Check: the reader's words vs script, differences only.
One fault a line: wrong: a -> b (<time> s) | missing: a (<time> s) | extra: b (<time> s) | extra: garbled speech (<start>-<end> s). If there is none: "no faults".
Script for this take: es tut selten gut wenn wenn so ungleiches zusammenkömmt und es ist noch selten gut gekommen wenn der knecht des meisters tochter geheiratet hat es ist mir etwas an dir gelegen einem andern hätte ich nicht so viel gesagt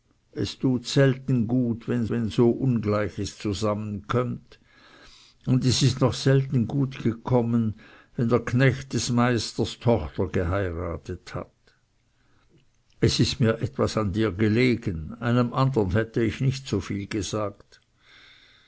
no faults